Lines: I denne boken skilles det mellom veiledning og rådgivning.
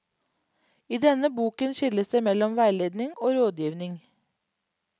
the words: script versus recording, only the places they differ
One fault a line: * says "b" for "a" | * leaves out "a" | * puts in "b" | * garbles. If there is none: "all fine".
all fine